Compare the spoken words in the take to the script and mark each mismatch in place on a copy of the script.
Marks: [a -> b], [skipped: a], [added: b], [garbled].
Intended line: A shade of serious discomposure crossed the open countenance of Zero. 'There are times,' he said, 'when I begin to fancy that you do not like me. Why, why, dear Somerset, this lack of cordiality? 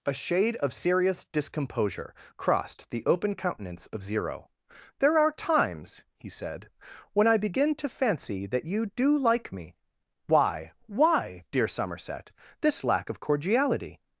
A shade of serious discomposure crossed the open countenance of Zero. 'There are times,' he said, 'when I begin to fancy that you do [skipped: not] like me. Why, why, dear Somerset, this lack of cordiality?